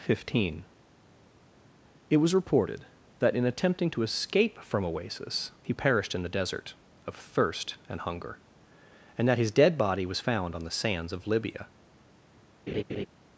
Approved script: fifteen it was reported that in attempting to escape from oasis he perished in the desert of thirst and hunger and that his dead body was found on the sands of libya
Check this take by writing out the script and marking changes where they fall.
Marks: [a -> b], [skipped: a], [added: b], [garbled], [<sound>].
fifteen it was reported that in attempting to escape from oasis he perished in the desert of thirst and hunger and that his dead body was found on the sands of libya [laugh]